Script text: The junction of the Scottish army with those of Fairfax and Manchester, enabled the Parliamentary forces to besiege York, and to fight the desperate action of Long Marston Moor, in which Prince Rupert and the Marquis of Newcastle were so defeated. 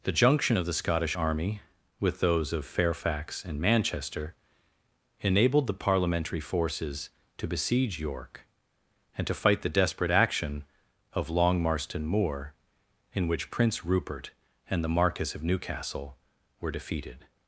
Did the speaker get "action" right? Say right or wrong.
right